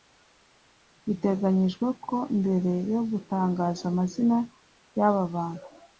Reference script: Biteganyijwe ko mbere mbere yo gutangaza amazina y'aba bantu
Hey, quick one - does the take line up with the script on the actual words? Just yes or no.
no